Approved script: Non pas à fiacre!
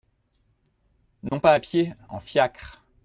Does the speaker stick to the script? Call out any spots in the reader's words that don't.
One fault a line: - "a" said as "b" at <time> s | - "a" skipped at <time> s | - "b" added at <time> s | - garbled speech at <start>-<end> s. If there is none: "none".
- "pied en" added at 1.6 s